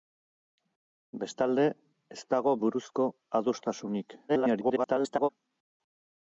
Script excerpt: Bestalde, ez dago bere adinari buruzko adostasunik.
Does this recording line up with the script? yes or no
no